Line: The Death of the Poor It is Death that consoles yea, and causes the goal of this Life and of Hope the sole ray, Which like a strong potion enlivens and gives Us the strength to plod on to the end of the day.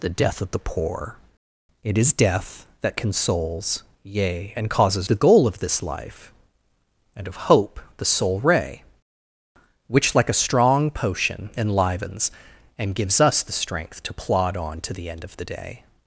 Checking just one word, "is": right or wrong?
right